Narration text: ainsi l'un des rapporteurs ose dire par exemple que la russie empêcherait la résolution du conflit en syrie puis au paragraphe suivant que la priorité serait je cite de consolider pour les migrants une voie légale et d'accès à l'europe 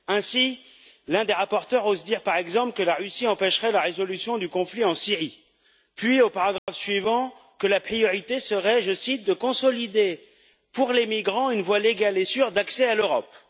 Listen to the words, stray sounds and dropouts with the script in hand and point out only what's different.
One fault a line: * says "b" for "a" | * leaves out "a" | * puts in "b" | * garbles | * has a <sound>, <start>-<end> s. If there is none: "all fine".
* has a dropout, 6.6-6.7 s
* puts in "sûre"